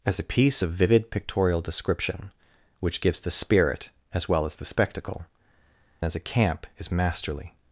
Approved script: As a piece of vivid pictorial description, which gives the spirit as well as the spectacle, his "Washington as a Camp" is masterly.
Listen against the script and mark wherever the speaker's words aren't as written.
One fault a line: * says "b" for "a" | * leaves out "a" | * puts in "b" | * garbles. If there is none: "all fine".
* leaves out "his Washington"